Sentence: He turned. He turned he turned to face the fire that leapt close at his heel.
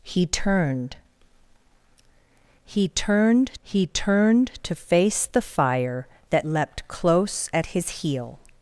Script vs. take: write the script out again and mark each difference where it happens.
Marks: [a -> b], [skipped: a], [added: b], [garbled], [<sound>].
He turned. He turned he turned to face the fire that leapt close at his heel.